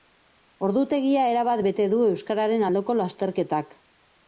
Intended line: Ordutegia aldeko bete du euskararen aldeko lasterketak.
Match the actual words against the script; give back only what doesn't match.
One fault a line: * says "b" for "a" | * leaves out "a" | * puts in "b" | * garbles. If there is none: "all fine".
* says "erabat" for "aldeko"